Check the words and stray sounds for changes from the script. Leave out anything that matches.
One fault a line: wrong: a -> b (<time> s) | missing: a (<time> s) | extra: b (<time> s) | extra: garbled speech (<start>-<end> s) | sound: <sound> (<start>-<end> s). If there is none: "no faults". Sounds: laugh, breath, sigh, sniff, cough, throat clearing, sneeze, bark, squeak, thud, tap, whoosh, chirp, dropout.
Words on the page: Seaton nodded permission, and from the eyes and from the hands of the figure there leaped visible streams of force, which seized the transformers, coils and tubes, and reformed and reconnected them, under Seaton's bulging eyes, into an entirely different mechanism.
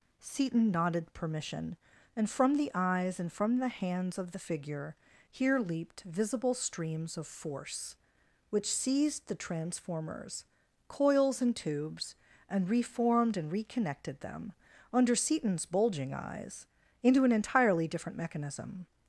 wrong: there -> here (5.3 s)